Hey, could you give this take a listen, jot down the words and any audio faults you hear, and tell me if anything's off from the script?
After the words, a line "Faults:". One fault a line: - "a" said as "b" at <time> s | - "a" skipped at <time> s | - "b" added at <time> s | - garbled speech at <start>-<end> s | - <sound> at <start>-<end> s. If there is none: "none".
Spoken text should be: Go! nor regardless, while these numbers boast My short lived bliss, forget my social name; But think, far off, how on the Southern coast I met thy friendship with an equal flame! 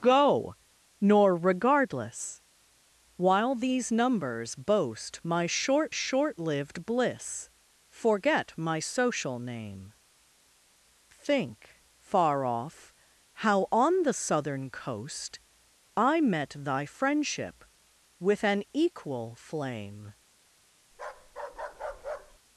Go! nor regardless, while these numbers boast My short short lived bliss, forget my social name; Think, far off, how on the Southern coast I met thy friendship with an equal flame!
Faults:
- "short" added at 5.9 s
- "But" skipped at 9.9 s
- bark at 20.9-22.4 s